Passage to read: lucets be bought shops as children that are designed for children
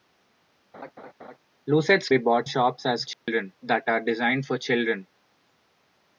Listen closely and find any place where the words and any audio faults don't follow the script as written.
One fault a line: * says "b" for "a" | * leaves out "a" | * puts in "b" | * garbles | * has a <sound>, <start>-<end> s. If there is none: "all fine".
* has a laugh, 0.7-1.4 s
* has a dropout, 3.1-3.3 s